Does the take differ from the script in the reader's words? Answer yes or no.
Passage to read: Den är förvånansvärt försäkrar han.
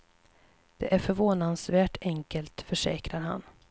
yes